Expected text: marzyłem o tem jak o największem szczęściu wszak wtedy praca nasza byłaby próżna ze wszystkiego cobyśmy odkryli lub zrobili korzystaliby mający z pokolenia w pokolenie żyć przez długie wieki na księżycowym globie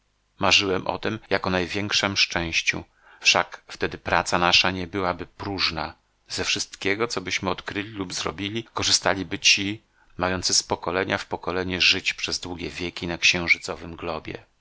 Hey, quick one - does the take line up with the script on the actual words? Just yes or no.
no